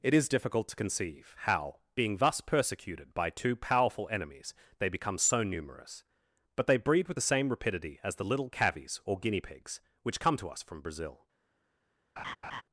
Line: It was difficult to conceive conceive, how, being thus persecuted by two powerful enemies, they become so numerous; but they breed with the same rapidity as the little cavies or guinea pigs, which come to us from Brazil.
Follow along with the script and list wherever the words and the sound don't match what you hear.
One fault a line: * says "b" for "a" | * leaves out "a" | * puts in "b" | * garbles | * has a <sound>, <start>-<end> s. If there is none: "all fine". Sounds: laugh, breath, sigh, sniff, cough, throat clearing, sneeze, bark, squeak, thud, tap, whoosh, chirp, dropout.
* says "is" for "was"
* leaves out "conceive"
* has a laugh, 12.2-12.6 s